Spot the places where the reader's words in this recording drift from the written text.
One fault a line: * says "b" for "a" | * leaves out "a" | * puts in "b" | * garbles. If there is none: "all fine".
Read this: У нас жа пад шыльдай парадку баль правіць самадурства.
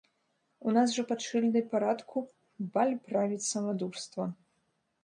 all fine